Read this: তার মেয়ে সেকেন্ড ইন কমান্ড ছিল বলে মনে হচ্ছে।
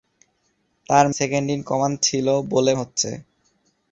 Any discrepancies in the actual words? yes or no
yes